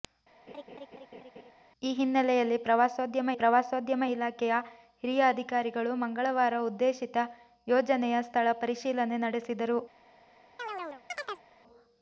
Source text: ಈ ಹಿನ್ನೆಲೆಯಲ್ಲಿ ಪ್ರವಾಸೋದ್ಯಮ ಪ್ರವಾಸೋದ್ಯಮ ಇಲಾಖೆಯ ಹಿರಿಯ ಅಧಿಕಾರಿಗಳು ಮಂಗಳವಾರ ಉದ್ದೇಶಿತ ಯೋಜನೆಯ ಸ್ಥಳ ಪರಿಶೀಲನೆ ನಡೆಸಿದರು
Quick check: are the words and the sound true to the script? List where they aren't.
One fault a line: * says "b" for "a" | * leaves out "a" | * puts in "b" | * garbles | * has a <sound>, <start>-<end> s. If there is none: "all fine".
* has a laugh, 0.5-1.5 s
* has a chirp, 10.6-11.5 s